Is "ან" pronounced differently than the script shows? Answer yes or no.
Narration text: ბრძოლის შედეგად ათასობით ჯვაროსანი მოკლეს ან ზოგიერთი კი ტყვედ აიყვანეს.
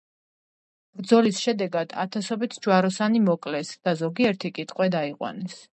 yes